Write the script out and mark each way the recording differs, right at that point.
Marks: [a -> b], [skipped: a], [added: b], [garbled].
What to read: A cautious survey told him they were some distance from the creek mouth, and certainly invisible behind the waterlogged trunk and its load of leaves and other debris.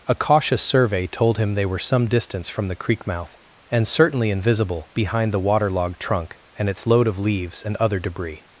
A cautious survey told him they were some distance from the creek mouth, and certainly invisible behind the waterlogged trunk and its load of leaves and other debris.